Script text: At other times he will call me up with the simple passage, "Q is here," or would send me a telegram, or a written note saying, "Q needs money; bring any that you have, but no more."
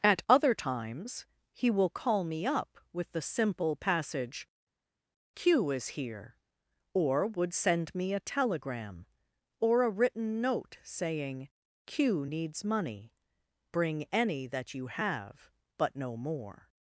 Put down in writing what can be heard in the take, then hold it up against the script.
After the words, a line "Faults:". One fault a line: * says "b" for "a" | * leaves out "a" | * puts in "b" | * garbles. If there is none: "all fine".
At other times he will call me up with the simple passage, "Q is here," or would send me a telegram, or a written note saying, "Q needs money; bring any that you have, but no more."
Faults:
all fine